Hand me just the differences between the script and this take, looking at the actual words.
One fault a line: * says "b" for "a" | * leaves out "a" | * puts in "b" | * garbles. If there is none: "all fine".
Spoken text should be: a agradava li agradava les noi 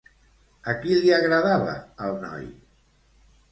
* says "qui" for "agradava"
* says "el" for "les"